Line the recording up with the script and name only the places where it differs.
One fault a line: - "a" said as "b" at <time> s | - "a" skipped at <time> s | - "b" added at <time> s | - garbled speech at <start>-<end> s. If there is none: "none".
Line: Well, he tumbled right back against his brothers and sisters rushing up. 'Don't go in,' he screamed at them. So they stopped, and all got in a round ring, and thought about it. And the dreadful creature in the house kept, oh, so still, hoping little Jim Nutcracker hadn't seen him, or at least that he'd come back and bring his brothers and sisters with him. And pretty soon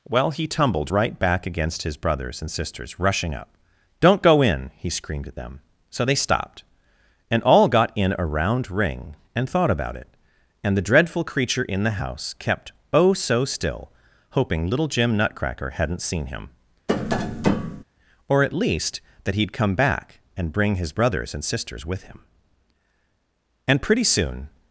none